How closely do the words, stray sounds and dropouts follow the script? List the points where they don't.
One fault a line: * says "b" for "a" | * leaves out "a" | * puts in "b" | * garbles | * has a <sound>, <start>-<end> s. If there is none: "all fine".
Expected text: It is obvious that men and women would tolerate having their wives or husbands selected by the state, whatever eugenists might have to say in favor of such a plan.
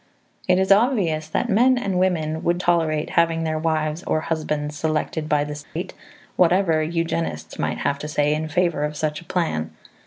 * has a dropout, 5.6-5.8 s